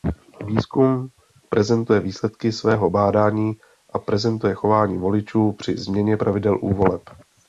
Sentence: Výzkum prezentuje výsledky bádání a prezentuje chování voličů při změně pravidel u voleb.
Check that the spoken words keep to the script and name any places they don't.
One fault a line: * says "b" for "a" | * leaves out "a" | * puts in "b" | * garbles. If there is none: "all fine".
* puts in "svého"